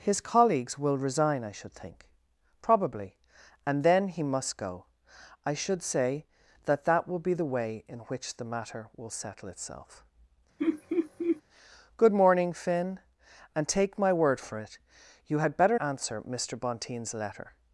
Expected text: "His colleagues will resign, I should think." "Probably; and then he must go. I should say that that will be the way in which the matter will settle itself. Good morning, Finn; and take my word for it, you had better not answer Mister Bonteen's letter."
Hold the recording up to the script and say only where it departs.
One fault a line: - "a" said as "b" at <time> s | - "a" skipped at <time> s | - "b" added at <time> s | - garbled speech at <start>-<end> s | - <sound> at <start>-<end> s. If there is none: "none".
- laugh at 10.6-11.4 s
- "not" skipped at 15.8 s